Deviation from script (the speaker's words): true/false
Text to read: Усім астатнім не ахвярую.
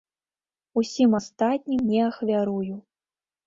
false